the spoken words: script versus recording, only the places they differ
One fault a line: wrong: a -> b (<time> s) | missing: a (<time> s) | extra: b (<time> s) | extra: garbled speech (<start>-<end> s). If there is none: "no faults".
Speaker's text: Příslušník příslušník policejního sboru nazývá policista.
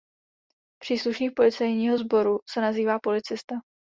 missing: příslušník (1.3 s)
extra: se (2.5 s)